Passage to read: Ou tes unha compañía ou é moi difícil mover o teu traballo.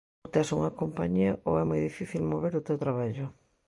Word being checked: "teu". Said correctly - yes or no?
yes